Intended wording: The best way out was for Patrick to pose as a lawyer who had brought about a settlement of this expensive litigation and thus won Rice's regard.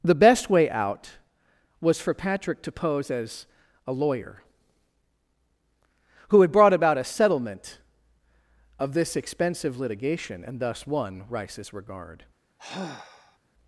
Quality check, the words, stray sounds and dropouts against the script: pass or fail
fail